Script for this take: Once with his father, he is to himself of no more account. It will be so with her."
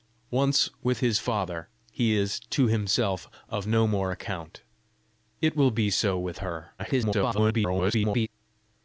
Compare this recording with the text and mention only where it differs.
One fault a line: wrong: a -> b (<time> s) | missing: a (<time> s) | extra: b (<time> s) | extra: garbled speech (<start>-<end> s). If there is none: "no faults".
extra: garbled speech (6.8-8.3 s)